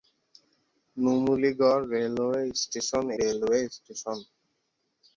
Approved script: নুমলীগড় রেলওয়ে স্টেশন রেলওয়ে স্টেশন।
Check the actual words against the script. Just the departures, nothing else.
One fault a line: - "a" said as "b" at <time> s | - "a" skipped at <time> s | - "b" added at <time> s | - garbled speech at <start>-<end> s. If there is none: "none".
none